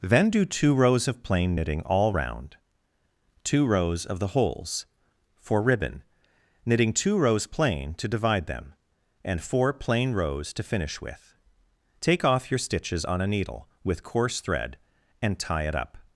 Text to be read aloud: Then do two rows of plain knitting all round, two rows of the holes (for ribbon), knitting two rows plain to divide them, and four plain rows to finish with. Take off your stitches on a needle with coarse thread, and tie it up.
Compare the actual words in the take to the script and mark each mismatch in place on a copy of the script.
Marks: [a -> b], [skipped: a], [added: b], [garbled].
Then do two rows of plain knitting all round, two rows of the holes (for ribbon), knitting two rows plain to divide them, and four plain rows to finish with. Take off your stitches on a needle with coarse thread, and tie it up.